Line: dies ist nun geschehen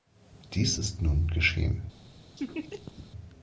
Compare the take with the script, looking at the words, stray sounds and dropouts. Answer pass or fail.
fail